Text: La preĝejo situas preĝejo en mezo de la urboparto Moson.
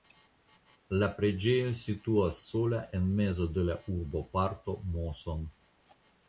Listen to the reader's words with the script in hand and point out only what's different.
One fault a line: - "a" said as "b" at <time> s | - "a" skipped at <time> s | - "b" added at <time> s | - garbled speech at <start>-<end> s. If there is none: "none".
- "preĝejo" said as "sola" at 2.5 s